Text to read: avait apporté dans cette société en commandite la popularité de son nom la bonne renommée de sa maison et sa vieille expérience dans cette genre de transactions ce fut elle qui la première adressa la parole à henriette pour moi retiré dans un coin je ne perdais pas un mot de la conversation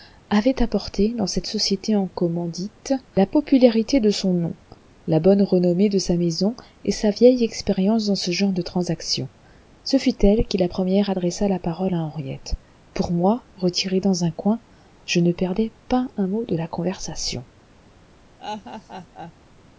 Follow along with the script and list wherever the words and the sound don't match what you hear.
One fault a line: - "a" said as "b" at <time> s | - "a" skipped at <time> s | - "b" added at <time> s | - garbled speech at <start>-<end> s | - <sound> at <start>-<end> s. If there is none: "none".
- "cette" said as "ce" at 8.2 s
- laugh at 18.4-19.3 s